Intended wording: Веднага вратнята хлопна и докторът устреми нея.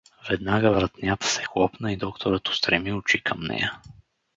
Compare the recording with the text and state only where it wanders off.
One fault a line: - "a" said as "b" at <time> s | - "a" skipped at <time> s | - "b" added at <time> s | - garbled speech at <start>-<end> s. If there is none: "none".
- "се" added at 1.3 s
- "очи към" added at 2.9 s